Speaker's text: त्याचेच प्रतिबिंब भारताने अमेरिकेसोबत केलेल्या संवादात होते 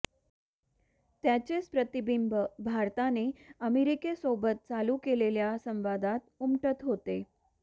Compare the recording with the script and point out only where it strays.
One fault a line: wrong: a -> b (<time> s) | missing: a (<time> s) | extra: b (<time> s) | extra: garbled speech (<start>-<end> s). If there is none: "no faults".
extra: चालू (4.7 s)
extra: उमटत (6.4 s)